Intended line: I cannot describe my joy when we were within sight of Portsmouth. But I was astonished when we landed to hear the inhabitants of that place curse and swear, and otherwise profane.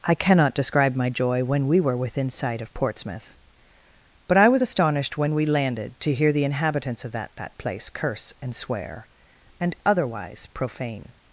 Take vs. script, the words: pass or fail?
fail